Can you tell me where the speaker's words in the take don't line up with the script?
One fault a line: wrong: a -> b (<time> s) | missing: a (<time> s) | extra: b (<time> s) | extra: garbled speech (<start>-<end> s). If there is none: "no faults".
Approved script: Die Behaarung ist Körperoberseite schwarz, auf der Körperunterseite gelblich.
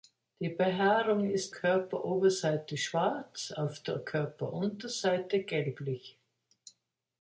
no faults